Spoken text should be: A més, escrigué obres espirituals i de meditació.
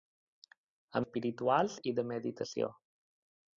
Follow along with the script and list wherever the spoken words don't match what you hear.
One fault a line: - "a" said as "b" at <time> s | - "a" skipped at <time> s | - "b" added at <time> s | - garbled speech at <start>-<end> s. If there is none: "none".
- "més escrigué obres" skipped at 1.0 s